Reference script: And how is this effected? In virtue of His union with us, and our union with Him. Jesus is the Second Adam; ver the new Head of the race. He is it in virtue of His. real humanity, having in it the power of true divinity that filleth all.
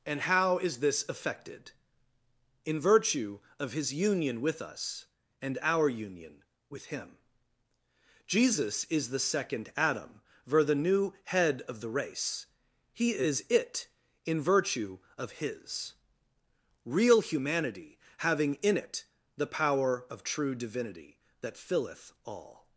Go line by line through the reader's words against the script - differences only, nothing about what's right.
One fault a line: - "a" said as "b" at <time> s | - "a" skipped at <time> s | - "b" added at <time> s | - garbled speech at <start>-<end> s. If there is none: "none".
none